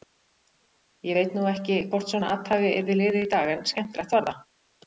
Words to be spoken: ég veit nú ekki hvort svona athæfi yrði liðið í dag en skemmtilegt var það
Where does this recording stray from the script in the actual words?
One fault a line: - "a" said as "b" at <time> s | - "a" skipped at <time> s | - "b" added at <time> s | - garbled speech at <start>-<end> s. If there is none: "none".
none